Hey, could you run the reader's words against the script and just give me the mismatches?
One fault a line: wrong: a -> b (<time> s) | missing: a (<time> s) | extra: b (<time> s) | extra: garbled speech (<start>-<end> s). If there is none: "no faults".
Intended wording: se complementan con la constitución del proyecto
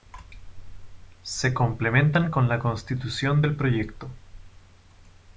no faults